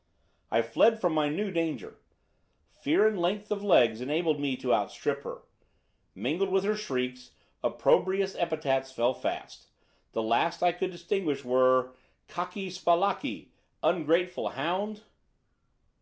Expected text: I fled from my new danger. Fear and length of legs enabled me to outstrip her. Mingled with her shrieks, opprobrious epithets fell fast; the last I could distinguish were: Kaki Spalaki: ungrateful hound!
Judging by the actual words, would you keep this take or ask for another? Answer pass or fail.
pass